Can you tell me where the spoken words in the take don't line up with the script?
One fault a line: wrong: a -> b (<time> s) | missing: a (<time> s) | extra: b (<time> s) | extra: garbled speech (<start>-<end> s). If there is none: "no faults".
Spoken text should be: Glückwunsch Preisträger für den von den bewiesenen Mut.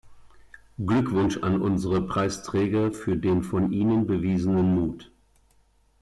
extra: an unsere (1.4 s)
wrong: den -> ihnen (3.7 s)